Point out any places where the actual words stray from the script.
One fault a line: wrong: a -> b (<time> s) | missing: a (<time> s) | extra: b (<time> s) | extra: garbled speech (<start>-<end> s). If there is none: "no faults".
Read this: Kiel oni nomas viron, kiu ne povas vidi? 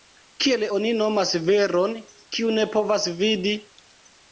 no faults